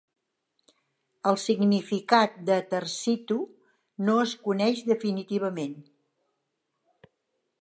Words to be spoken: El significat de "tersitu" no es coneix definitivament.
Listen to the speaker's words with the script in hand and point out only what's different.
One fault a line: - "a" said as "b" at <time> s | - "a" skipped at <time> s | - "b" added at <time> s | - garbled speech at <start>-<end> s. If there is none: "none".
none